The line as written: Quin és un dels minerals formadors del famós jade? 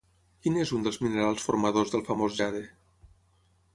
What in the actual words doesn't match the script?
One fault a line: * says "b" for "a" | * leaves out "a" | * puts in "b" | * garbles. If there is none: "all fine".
all fine